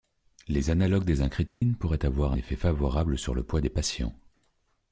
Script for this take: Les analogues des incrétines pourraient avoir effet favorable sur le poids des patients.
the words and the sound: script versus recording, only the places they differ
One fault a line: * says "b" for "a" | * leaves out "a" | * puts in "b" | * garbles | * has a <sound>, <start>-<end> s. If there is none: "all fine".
* has a dropout, 1.5-1.6 s